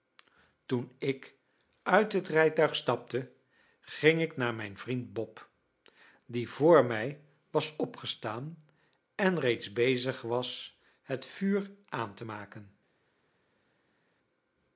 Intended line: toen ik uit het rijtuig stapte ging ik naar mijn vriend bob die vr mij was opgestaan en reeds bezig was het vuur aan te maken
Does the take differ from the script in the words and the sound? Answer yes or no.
no